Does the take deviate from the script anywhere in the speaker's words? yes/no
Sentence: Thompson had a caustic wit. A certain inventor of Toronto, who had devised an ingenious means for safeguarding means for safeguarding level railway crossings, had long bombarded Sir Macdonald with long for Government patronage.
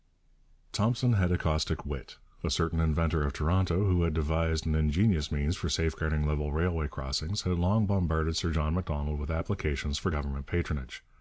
yes